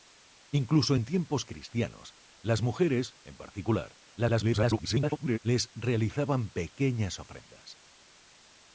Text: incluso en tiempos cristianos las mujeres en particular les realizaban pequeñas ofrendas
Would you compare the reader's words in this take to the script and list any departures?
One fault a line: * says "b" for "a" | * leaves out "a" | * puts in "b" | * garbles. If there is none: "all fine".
* garbles